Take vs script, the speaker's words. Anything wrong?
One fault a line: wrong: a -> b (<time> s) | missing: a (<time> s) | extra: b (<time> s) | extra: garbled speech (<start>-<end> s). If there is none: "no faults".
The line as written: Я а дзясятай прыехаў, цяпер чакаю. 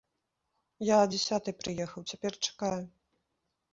no faults